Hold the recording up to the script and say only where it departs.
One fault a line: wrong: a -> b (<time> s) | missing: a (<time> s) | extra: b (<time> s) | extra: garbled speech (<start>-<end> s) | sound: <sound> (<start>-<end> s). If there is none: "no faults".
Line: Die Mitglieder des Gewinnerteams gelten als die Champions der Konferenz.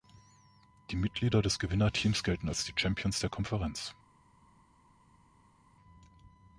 no faults